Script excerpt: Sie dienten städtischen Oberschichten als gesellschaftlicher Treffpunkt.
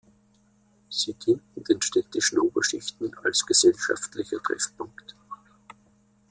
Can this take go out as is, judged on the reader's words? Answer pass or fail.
fail